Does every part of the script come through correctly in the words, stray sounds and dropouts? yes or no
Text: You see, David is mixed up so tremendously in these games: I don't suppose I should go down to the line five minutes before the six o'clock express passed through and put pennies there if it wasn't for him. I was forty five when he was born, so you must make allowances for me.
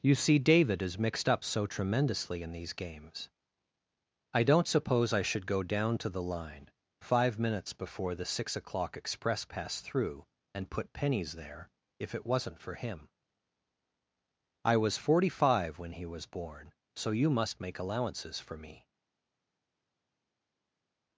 yes